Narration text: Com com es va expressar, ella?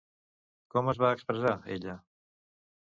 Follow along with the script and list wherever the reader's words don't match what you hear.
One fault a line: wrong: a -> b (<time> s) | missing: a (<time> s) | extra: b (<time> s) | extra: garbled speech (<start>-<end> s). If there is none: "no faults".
missing: com (0.9 s)